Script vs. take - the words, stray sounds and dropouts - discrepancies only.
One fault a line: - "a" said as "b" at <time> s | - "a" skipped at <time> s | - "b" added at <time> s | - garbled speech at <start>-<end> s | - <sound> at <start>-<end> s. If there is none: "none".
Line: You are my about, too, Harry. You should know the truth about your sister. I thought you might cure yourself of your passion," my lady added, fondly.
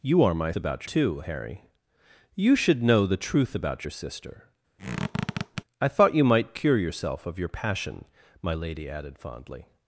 - squeak at 4.8-5.6 s